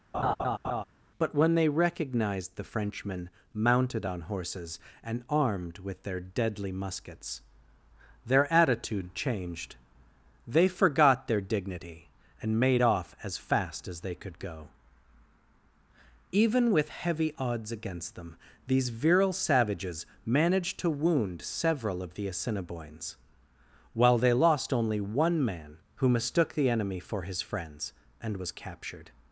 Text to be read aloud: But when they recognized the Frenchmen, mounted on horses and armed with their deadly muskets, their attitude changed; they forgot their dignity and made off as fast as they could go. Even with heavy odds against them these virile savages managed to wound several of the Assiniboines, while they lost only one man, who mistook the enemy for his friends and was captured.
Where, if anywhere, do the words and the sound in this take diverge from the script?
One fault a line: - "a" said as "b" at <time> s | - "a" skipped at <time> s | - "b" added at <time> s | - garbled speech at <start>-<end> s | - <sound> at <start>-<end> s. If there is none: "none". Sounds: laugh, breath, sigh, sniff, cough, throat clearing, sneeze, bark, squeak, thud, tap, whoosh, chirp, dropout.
- laugh at 0.1-0.8 s